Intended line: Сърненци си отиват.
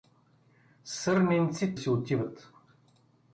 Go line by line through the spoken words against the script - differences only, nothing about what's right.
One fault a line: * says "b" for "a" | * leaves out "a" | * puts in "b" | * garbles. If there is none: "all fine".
all fine